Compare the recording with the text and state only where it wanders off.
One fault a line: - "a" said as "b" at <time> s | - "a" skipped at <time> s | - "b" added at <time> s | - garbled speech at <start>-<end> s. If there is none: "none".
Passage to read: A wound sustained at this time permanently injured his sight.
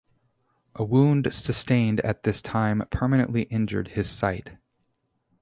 none